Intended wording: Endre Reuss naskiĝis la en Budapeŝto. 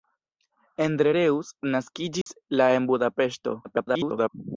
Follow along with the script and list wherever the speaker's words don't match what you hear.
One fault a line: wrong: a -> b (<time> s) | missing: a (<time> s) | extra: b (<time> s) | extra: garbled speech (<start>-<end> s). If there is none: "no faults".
extra: garbled speech (3.6-4.3 s)